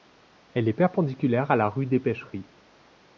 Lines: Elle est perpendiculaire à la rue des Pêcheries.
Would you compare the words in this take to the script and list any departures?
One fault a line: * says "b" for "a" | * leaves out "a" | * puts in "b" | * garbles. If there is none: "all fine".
all fine